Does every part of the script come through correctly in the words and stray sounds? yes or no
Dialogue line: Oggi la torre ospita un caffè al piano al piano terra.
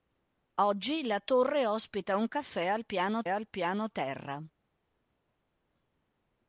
yes